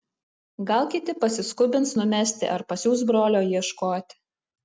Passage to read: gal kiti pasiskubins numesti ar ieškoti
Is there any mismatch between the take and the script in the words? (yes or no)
yes